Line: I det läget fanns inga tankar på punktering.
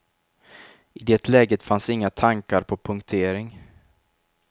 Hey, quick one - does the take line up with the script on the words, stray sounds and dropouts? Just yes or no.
yes